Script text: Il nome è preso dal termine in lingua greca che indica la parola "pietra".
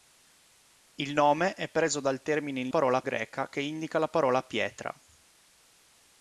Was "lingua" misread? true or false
true